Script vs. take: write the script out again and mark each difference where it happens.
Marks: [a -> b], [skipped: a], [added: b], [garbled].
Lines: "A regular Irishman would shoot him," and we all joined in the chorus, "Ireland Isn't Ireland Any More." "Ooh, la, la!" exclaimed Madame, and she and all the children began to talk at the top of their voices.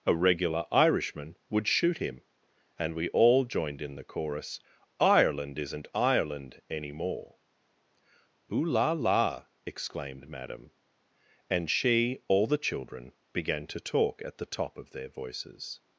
"A regular Irishman would shoot him," and we all joined in the chorus, "Ireland Isn't Ireland Any More." "Ooh, la, la!" exclaimed Madame, and she [skipped: and] all the children began to talk at the top of their voices.